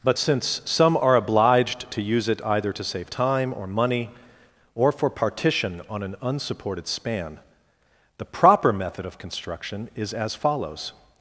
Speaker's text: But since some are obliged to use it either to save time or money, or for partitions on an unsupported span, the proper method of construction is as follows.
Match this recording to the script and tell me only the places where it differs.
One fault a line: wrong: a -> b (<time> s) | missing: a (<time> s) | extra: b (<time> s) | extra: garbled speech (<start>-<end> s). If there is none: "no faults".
wrong: partitions -> partition (5.1 s)